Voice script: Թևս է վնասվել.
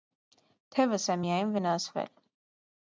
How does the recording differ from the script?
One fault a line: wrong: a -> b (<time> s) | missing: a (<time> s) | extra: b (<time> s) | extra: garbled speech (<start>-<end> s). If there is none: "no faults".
extra: միայն (1.2 s)